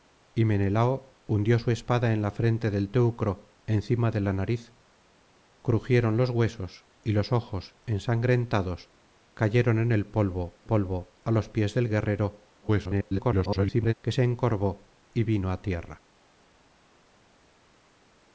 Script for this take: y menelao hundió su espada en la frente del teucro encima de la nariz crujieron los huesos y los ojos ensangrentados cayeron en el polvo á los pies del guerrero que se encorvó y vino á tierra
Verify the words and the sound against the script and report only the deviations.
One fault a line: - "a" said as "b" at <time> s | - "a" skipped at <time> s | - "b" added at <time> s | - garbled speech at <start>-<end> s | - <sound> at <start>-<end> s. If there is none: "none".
- "polvo" added at 10.6 s
- garbled speech at 12.6-13.9 s